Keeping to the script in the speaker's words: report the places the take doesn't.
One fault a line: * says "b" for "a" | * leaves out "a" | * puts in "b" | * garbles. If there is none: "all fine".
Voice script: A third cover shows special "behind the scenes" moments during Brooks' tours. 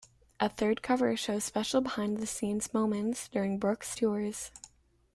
all fine